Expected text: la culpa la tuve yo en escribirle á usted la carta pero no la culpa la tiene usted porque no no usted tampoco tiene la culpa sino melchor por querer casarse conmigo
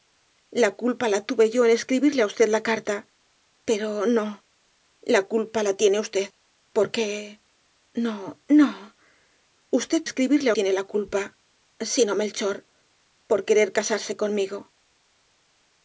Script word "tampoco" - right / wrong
wrong